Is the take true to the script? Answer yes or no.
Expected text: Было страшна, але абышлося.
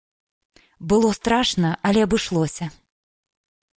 yes